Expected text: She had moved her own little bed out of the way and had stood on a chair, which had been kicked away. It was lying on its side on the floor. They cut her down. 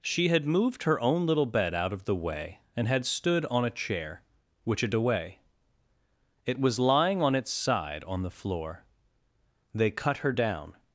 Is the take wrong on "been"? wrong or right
wrong